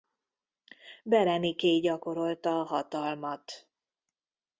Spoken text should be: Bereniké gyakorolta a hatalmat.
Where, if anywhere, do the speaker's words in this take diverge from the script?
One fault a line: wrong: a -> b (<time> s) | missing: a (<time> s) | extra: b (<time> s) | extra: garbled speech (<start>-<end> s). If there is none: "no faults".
no faults